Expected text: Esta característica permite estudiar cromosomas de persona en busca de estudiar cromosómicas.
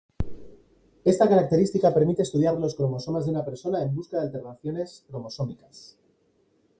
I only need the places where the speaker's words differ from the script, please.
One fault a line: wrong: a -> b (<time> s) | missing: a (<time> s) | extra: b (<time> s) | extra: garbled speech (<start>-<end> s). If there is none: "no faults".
extra: los (2.5 s)
extra: una (3.3 s)
wrong: estudiar -> alteraciones (4.2 s)